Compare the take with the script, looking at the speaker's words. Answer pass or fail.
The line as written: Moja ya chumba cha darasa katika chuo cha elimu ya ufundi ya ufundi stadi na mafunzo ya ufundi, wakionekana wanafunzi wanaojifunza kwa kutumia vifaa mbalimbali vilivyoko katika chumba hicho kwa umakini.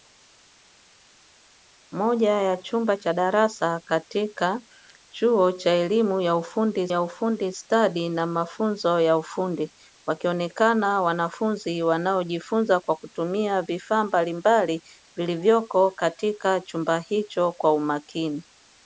pass